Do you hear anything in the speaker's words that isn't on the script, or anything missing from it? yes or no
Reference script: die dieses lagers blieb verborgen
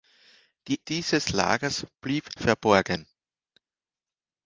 no